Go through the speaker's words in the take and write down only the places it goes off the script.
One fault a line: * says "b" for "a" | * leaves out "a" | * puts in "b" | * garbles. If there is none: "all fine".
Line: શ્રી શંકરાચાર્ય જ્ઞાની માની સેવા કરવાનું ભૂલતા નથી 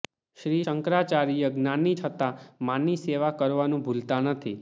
* puts in "છતાં"